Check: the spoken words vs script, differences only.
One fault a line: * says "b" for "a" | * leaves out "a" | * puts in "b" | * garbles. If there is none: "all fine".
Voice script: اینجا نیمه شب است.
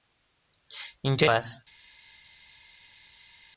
* leaves out "نیمه شب"